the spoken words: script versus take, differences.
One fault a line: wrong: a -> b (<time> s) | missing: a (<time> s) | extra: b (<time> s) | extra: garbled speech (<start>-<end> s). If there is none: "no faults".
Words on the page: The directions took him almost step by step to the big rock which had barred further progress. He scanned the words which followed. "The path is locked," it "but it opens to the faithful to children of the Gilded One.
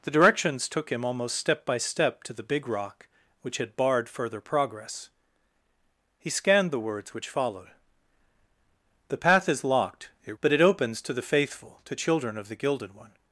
no faults